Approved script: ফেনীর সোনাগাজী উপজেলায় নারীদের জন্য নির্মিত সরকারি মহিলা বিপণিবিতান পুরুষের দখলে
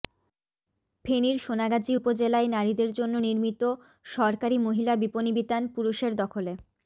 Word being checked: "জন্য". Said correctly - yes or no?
yes